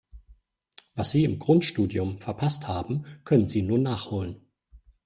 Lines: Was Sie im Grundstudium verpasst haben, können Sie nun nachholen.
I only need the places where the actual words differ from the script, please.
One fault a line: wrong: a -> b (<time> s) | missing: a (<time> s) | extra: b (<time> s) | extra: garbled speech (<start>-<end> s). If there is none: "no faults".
no faults